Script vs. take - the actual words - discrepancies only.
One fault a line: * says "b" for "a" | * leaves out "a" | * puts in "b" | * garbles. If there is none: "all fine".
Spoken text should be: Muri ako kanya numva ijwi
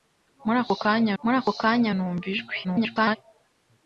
* puts in "muri ako kanya"
* garbles